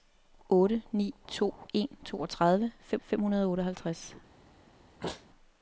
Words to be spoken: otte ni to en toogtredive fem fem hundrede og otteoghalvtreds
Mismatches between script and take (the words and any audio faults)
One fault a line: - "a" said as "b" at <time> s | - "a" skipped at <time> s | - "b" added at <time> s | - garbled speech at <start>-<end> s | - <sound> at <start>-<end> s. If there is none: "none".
- sneeze at 5.0-5.3 s